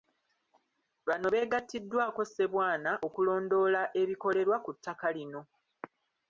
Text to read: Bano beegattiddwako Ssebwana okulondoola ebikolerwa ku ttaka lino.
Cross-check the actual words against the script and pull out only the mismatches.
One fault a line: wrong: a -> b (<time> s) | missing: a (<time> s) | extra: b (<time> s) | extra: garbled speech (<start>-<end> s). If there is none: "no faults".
no faults